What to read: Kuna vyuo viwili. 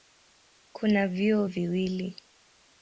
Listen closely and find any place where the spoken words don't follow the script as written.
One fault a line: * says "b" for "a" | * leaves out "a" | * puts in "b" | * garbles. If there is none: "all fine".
all fine